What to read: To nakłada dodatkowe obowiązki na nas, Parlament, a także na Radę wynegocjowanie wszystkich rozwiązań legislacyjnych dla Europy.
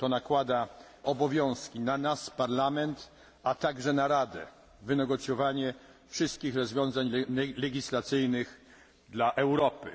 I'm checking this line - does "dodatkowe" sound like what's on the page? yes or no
no